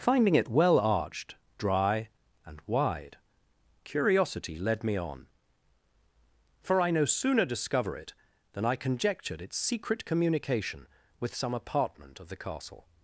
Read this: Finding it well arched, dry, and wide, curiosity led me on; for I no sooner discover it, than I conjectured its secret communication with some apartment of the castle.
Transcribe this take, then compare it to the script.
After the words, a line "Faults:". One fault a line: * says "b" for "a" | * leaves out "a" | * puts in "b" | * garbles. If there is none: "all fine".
Finding it well arched, dry, and wide, curiosity led me on; for I no sooner discover it, than I conjectured its secret communication with some apartment of the castle.
Faults:
all fine